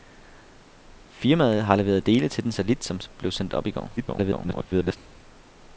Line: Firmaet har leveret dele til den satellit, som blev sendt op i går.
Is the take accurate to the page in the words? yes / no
no